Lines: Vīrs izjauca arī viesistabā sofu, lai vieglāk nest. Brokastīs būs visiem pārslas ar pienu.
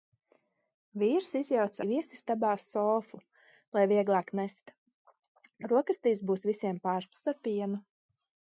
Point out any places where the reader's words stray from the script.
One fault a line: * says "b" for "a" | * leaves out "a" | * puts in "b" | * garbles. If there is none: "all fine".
* leaves out "arī"